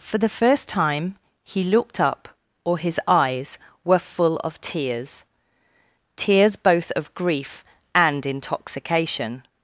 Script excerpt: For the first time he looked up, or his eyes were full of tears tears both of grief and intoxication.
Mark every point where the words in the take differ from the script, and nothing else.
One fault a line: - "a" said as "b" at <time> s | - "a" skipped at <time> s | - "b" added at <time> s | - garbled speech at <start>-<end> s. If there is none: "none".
none